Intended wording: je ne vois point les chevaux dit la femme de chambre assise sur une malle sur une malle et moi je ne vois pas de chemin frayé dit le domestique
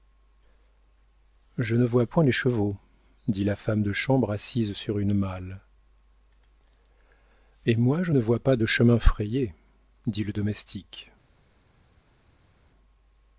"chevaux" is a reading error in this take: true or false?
false